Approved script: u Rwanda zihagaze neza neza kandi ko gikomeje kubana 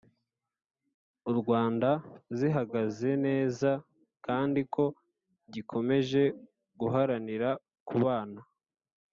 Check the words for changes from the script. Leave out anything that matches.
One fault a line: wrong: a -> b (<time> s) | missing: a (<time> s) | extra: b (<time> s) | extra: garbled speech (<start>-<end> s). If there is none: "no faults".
missing: neza (3.7 s)
extra: guharanira (6.8 s)